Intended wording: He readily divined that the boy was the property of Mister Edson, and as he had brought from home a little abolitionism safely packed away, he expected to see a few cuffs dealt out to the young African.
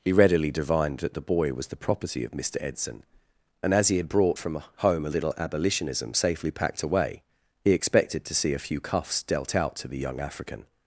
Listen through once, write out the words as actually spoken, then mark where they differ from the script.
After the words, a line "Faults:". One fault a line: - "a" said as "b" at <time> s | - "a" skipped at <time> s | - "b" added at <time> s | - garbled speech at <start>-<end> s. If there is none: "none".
He readily divined that the boy was the property of Mister Edson, and as he had brought from home a little abolitionism safely packed away, he expected to see a few cuffs dealt out to the young African.
Faults:
none